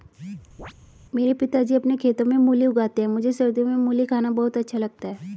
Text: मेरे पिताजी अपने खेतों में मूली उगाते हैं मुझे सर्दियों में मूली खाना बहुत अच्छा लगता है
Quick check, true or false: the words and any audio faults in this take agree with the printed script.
false